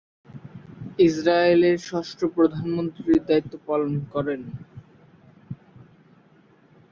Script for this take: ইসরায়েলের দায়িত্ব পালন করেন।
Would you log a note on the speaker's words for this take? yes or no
yes